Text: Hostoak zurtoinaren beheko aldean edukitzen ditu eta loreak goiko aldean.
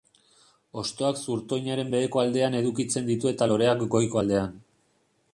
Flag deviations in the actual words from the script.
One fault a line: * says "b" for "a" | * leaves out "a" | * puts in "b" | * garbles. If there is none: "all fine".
all fine